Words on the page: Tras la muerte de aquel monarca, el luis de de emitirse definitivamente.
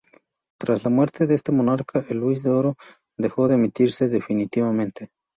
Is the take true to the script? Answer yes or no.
no